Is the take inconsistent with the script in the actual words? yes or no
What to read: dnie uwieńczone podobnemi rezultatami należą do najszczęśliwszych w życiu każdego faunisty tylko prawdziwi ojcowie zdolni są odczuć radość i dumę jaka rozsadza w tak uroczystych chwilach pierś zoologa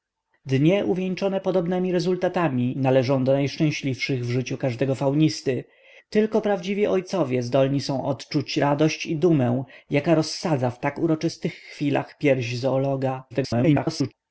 yes